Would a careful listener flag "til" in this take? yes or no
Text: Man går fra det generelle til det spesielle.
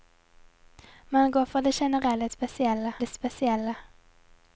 yes